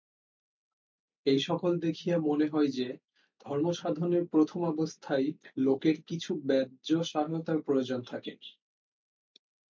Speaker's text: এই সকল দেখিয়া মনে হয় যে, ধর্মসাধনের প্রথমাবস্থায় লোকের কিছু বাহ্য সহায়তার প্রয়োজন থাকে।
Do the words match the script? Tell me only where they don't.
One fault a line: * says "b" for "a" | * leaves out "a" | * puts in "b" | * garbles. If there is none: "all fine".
all fine